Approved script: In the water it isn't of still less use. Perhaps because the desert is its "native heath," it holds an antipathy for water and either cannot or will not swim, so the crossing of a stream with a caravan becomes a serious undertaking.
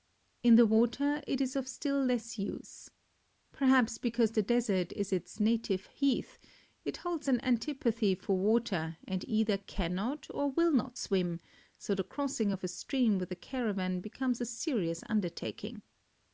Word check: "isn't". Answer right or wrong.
wrong